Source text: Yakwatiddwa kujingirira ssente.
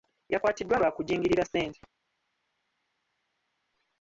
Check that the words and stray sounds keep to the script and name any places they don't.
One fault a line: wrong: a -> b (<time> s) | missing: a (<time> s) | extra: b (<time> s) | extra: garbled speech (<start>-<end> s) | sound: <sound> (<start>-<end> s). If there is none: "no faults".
extra: lwa (0.8 s)